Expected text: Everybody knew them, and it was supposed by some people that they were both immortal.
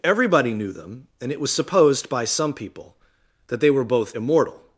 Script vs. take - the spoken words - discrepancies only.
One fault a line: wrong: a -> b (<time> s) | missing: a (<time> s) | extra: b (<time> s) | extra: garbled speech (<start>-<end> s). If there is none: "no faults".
no faults